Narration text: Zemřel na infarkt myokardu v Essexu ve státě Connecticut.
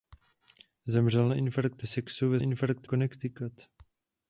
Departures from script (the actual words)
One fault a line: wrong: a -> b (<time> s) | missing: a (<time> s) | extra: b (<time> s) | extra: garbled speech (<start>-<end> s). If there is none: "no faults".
missing: myokardu v (1.8 s)
wrong: státě -> infarkt (2.4 s)